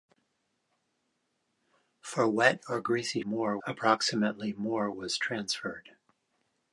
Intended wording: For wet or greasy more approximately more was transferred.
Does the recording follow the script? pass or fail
pass